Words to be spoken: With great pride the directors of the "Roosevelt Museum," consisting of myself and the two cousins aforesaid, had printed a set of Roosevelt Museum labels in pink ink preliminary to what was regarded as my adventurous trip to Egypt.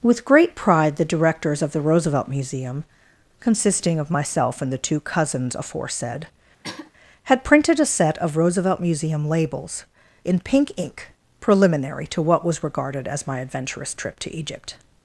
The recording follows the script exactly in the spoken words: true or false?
true